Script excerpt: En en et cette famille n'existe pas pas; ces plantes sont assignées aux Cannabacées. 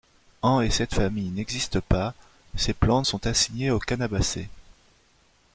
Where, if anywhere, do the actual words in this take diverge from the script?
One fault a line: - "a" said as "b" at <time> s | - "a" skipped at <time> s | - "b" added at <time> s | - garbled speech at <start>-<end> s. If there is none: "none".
- "en" skipped at 0.6 s
- "pas" skipped at 2.1 s